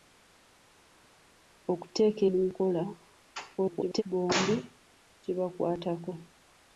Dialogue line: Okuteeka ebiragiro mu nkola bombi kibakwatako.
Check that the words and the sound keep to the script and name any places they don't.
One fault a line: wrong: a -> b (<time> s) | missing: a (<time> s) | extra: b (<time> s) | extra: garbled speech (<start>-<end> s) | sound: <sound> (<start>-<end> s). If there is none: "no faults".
missing: ebiragiro (2.2 s)
extra: garbled speech (3.6-4.0 s)